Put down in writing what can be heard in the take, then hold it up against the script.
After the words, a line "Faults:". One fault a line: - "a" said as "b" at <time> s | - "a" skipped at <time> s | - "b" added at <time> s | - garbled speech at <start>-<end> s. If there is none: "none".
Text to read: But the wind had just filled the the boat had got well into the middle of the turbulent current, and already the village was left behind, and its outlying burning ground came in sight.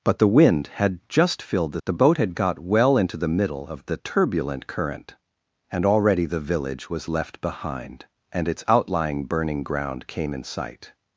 But the wind had just filled the the boat had got well into the middle of the turbulent current, and already the village was left behind, and its outlying burning ground came in sight.
Faults:
none